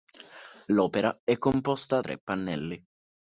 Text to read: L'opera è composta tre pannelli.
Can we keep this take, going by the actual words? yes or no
yes